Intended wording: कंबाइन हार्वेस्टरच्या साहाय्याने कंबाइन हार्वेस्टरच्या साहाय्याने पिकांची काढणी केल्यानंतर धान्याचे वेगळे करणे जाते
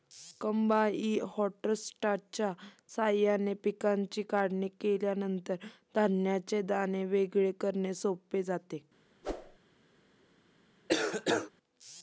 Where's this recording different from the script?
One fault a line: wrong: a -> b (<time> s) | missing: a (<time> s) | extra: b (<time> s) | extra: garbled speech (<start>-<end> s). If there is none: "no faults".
missing: कंबाइन हार्वेस्टरच्या साहाय्याने (3.5 s)
extra: दाणे (6.6 s)
extra: सोपे (7.9 s)